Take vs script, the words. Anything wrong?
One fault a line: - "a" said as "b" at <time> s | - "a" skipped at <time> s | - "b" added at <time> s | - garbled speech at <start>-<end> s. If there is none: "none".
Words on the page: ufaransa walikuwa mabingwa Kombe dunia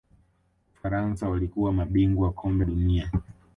none